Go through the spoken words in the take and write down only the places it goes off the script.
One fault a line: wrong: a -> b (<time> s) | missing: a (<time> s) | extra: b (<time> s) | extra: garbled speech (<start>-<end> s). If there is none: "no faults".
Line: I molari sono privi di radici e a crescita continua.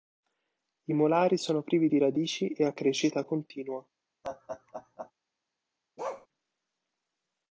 no faults